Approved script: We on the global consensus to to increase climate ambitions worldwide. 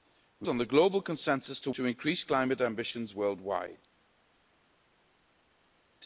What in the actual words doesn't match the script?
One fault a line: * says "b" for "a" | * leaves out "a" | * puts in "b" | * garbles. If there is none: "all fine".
all fine